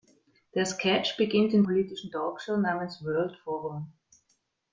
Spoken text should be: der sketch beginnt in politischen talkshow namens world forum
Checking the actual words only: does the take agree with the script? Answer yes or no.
yes